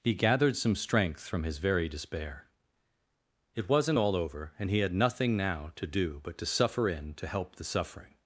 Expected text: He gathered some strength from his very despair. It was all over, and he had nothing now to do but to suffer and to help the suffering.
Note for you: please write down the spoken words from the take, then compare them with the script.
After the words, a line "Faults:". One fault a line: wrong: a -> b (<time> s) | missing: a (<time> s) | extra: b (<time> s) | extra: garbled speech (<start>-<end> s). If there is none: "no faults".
He gathered some strength from his very despair. It wasn't all over, and he had nothing now to do but to suffer in to help the suffering.
Faults:
wrong: was -> wasn't (3.7 s)
wrong: and -> in (6.9 s)